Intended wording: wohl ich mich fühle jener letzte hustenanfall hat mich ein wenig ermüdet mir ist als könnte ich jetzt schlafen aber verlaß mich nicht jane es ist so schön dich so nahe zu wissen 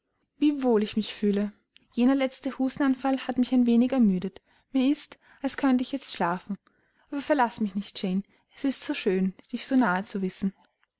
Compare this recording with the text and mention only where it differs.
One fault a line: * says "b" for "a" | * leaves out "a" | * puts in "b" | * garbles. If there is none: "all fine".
all fine